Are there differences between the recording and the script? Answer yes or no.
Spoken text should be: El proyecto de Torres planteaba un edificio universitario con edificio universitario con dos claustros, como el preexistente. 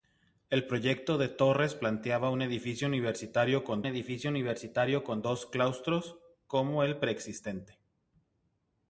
no